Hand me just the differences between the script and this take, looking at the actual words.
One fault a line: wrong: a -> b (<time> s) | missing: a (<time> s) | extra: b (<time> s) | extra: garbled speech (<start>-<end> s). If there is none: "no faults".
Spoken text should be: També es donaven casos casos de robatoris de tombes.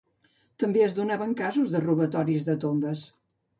missing: casos (1.8 s)